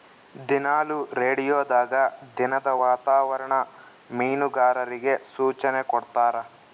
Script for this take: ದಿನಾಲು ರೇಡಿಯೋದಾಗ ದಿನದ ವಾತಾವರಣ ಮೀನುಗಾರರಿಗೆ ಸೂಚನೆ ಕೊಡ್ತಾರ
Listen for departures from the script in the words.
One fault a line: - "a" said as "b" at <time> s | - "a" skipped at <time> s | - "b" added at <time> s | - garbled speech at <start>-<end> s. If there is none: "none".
none